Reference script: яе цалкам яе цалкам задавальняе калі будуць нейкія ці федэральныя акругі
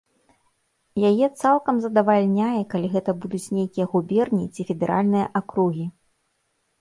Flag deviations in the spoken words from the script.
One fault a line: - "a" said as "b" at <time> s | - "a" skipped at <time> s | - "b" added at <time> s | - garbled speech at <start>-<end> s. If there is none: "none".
- "яе цалкам" skipped at 1.8 s
- "гэта" added at 3.0 s
- "губерні" added at 3.9 s